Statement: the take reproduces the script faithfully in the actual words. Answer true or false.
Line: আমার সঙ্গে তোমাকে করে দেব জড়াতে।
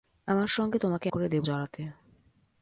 true